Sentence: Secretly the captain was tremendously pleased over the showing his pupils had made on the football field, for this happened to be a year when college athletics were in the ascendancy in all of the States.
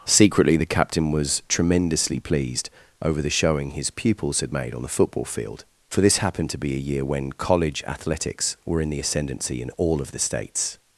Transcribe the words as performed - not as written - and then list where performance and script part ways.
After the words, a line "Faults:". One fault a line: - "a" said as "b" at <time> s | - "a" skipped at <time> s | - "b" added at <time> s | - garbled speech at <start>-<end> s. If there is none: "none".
Secretly the captain was tremendously pleased over the showing his pupils had made on the football field, for this happened to be a year when college athletics were in the ascendancy in all of the States.
Faults:
none